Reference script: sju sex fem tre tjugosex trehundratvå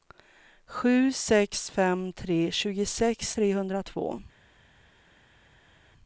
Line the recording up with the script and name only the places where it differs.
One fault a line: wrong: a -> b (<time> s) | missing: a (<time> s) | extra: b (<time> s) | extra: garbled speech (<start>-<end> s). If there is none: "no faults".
no faults